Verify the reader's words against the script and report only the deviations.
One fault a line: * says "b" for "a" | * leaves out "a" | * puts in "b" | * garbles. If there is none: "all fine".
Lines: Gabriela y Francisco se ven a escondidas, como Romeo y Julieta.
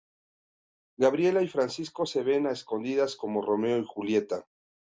all fine